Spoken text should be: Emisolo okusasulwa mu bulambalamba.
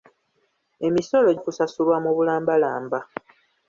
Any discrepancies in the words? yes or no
no